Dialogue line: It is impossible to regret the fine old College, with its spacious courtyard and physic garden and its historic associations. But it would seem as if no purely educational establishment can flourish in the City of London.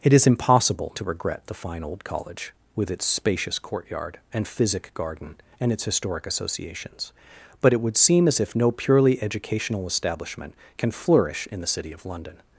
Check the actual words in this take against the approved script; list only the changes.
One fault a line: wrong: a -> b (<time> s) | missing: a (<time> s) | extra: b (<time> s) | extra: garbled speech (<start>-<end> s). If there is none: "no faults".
no faults